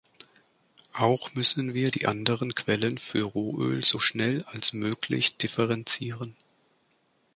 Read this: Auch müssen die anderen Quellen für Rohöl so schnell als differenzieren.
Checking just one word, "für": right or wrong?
right